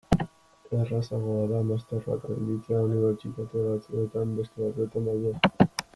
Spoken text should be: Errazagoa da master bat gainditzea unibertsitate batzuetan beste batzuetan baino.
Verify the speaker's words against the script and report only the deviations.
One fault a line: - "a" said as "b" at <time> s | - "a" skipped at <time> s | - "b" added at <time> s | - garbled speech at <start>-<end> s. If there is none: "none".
none